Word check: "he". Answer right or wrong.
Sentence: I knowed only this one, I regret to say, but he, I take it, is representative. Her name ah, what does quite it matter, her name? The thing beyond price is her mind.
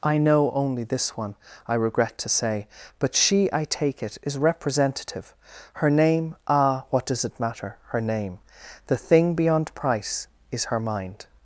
wrong